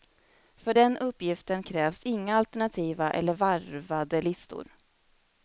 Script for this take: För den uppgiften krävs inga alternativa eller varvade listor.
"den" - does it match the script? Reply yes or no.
yes